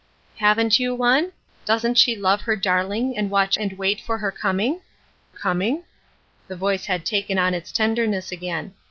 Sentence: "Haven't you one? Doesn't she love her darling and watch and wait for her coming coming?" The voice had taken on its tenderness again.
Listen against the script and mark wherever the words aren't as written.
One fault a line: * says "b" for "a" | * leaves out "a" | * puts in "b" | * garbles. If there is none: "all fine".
all fine